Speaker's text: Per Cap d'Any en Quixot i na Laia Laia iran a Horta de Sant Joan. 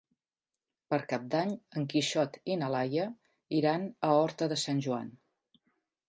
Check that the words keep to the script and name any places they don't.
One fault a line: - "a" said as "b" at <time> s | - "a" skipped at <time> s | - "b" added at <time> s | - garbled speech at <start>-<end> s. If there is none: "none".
- "Laia" skipped at 3.1 s